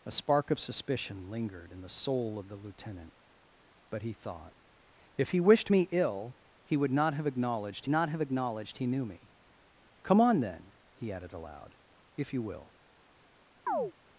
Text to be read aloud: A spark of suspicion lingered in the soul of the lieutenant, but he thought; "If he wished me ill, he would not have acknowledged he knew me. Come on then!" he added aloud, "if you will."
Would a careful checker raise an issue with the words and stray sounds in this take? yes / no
yes